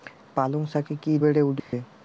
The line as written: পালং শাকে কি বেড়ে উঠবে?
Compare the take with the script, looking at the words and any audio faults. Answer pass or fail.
fail